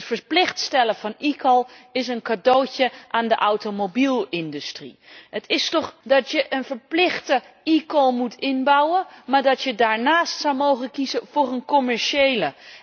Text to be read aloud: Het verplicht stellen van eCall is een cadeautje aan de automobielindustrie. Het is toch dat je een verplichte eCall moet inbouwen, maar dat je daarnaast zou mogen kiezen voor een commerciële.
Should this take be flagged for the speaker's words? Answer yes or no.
no